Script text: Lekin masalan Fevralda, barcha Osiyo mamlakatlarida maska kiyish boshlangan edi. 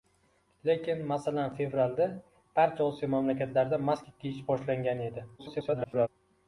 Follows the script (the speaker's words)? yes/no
no